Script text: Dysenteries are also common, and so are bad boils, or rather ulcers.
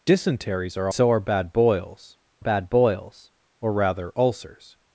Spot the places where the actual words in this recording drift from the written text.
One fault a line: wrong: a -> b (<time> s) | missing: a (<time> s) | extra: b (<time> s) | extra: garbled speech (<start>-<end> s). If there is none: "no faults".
wrong: also common and so are -> so are bad boils (0.9 s)